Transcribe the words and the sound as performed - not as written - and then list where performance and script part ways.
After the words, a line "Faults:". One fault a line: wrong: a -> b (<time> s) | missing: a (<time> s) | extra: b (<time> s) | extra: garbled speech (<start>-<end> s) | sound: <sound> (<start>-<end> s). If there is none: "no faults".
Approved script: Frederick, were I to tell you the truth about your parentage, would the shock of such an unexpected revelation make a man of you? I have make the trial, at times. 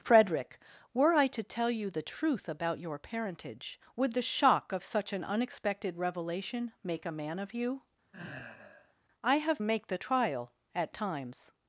Frederick, were I to tell you the truth about your parentage, would the shock of such an unexpected revelation make a man of you? I have make the trial, at times.
Faults:
sound: sigh (8.1-8.9 s)